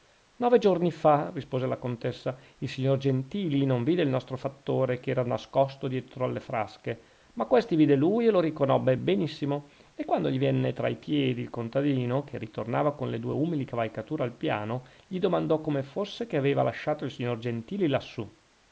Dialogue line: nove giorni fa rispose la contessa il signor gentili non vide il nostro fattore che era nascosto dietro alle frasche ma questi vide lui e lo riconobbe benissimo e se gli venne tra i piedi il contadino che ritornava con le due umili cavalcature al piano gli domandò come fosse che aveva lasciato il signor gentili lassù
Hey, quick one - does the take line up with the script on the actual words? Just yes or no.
no